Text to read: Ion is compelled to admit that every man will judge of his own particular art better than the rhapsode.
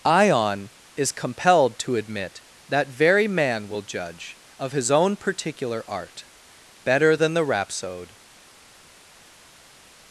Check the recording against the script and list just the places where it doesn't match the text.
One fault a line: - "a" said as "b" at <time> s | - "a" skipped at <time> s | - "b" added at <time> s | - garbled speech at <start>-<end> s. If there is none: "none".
- "every" said as "very" at 2.9 s